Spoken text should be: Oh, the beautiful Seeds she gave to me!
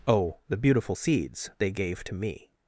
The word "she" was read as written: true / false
false